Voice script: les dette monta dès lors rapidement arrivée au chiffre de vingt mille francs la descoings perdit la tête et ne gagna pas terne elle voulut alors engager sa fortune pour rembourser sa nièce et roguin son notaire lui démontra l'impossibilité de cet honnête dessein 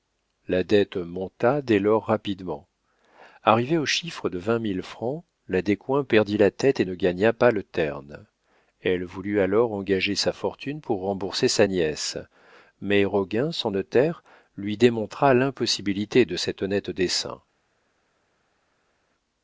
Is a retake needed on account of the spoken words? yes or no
yes